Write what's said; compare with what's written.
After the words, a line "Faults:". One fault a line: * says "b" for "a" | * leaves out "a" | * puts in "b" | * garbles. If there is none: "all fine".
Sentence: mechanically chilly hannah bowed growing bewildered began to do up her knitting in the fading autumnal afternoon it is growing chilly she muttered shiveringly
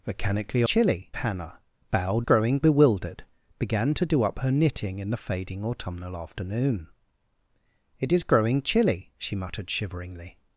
mechanically chilly hannah bowed growing bewildered began to do up her knitting in the fading autumnal afternoon it is growing chilly she muttered shiveringly
Faults:
all fine